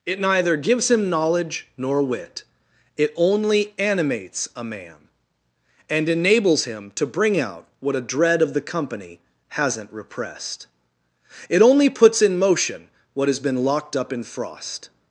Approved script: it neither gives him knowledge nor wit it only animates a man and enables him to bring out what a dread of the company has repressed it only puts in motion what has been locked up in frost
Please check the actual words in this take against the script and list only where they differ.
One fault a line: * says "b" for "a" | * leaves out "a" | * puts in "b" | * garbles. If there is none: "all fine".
* says "hasn't" for "has"